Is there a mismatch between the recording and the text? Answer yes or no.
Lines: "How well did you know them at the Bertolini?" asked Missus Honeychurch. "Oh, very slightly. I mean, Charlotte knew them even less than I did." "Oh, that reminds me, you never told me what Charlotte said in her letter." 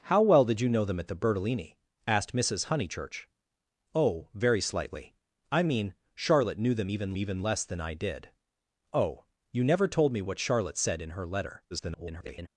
yes